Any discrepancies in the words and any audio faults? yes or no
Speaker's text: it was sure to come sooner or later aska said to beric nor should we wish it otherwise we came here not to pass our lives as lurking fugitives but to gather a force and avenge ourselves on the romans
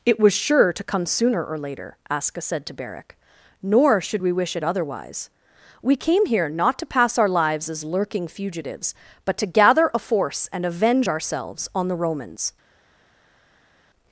no